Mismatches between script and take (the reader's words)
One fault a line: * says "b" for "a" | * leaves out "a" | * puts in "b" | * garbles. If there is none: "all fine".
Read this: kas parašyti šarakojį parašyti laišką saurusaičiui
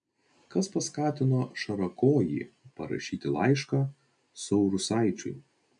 * says "paskatino" for "parašyti"